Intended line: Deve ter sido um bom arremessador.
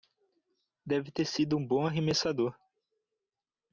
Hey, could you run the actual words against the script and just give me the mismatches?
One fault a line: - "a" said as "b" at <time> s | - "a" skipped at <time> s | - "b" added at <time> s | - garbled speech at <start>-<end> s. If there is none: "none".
none